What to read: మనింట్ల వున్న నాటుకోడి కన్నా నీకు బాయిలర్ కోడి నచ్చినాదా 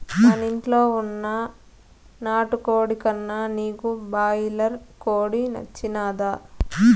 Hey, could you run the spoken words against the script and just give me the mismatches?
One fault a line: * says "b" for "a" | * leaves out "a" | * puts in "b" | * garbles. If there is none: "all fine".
all fine